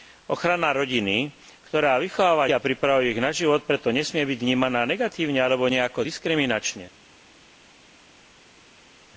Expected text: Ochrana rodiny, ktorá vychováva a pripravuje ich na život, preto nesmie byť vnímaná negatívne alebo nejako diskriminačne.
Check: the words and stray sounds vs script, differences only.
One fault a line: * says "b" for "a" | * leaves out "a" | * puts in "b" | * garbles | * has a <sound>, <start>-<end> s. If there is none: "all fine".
all fine